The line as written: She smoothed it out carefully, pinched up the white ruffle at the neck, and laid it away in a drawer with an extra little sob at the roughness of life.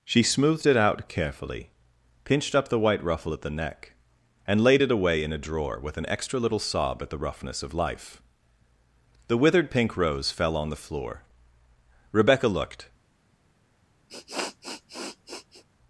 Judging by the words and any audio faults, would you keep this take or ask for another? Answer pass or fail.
fail